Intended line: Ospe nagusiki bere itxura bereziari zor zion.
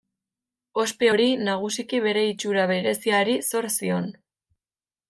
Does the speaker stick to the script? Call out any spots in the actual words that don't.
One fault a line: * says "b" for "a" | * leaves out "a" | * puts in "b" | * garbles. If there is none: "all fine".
* puts in "hori"